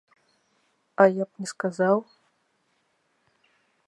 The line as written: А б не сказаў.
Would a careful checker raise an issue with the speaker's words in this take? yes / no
yes